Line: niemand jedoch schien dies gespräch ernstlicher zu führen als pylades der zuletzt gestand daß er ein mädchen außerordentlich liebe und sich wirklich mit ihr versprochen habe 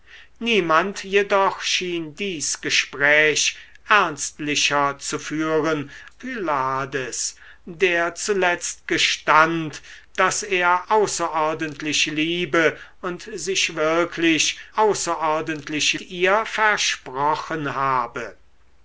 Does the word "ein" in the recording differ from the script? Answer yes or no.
yes